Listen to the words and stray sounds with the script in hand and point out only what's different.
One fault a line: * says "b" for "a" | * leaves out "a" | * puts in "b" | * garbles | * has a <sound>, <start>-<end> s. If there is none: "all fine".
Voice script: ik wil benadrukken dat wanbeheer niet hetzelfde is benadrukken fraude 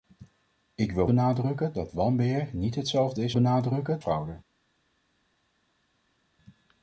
all fine